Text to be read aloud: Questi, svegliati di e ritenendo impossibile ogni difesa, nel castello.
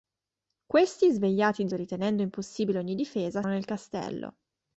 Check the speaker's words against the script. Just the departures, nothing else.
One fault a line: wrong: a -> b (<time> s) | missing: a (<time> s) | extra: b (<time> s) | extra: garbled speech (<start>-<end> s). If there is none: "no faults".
no faults